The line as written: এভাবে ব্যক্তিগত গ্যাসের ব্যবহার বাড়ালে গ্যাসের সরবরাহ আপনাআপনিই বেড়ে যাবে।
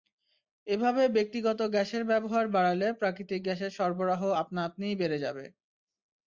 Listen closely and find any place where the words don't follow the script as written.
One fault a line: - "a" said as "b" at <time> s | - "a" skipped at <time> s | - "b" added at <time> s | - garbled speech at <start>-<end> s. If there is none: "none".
- "প্রাকৃতিক" added at 3.0 s